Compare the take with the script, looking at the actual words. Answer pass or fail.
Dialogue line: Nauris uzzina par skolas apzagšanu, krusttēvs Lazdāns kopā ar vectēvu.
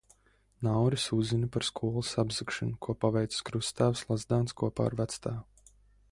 fail